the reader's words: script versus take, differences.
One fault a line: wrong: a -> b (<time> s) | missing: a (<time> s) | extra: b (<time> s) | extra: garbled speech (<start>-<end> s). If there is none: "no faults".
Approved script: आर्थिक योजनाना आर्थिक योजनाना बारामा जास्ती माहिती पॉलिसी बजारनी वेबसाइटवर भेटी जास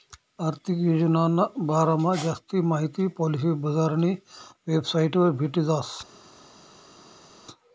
missing: आर्थिक योजनाना (1.4 s)